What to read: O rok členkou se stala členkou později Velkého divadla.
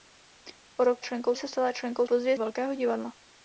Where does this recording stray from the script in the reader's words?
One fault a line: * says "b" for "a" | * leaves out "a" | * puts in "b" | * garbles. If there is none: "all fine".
all fine